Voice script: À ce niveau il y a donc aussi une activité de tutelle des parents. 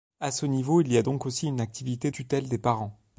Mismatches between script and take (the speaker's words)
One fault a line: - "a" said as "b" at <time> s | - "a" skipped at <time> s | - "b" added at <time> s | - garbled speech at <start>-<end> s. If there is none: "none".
- "de" skipped at 2.1 s